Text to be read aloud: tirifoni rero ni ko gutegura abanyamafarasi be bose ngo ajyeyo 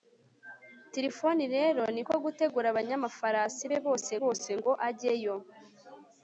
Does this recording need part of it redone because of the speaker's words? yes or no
yes